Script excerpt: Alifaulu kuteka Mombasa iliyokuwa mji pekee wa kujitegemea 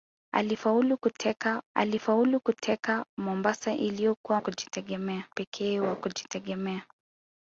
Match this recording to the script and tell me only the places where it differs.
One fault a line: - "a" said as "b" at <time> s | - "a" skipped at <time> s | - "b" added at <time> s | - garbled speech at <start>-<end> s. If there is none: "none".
- "alifaulu kuteka" added at 1.8 s
- "mji" said as "kujitegemea" at 4.4 s